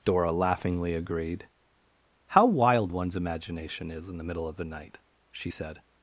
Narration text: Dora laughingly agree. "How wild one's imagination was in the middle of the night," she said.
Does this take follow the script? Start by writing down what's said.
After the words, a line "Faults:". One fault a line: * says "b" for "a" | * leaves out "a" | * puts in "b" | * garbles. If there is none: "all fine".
Dora laughingly agreed. "How wild one's imagination is in the middle of the night," she said.
Faults:
* says "agreed" for "agree"
* says "is" for "was"